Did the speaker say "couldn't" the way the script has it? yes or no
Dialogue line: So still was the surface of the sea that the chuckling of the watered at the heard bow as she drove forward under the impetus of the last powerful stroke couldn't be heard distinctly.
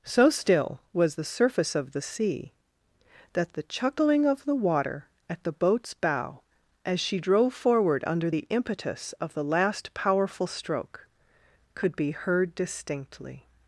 no